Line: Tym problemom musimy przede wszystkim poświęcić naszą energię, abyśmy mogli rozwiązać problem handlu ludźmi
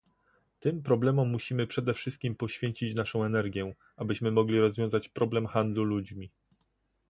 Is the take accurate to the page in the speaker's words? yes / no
yes